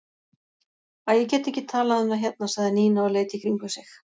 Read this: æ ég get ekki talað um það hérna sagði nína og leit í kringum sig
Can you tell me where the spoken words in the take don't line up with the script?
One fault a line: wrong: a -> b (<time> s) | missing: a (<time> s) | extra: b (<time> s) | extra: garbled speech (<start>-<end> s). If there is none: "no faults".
no faults